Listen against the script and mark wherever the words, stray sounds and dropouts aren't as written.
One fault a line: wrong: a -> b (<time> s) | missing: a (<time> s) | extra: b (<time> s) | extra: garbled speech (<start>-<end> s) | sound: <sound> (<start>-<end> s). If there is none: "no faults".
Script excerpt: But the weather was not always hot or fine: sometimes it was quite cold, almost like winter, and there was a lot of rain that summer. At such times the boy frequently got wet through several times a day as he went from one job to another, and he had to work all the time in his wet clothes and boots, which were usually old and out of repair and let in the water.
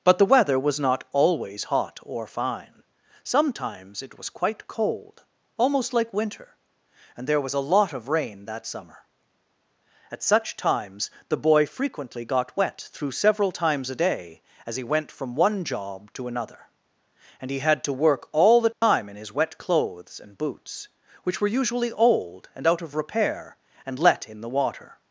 sound: dropout (18.7-18.8 s)